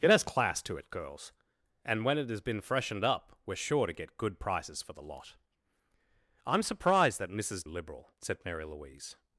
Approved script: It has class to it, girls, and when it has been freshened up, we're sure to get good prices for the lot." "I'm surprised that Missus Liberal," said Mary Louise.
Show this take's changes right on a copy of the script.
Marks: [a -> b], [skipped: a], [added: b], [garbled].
It has class to it, girls, and when it has been freshened up, we're sure to get good prices for the lot." "I'm surprised that Missus Liberal," said Mary Louise.